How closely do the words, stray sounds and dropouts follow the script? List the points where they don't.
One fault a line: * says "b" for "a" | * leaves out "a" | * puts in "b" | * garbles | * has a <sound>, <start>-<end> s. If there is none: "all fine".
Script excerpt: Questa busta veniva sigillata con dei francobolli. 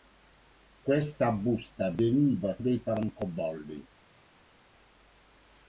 * leaves out "sigillata con"